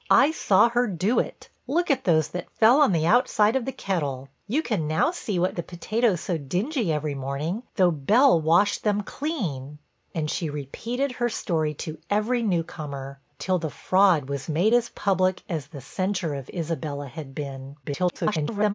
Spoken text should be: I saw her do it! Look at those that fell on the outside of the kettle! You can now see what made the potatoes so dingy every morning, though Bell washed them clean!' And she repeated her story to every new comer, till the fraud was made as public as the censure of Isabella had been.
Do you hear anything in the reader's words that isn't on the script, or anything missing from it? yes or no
yes